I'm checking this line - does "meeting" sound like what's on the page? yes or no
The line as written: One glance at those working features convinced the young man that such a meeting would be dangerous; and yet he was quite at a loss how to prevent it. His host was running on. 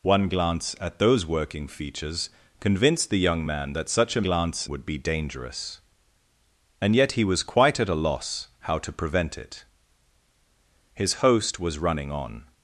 no